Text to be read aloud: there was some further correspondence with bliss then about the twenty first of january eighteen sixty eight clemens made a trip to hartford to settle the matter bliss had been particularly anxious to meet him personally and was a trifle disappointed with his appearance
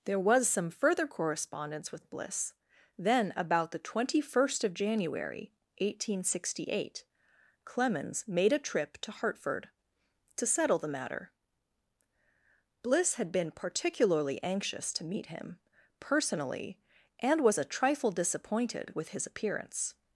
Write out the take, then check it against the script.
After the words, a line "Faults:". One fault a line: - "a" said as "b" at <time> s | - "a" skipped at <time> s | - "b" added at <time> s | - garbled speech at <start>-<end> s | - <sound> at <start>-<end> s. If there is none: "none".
there was some further correspondence with bliss then about the twenty first of january eighteen sixty eight clemens made a trip to hartford to settle the matter bliss had been particularly anxious to meet him personally and was a trifle disappointed with his appearance
Faults:
none